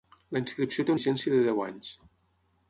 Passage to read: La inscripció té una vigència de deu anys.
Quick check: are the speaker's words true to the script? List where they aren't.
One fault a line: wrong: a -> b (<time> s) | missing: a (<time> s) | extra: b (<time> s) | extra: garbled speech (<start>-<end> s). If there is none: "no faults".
missing: una (0.9 s)